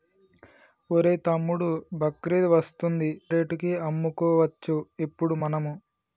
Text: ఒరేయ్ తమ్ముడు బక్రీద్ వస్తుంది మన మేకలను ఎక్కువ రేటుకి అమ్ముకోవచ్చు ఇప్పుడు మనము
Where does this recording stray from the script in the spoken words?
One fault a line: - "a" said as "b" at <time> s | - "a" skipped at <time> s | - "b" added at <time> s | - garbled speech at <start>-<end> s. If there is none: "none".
- "మన మేకలను ఎక్కువ" skipped at 3.1 s